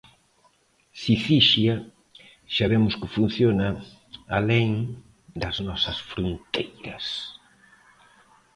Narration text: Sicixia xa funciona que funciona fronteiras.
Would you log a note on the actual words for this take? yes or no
yes